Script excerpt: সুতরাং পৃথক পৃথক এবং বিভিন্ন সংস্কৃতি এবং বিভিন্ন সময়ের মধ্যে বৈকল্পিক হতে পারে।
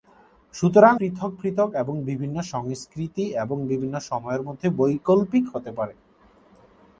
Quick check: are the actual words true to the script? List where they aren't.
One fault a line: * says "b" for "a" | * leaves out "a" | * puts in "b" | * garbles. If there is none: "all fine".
all fine